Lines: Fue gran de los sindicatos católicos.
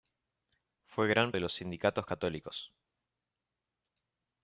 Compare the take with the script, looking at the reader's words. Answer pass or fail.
pass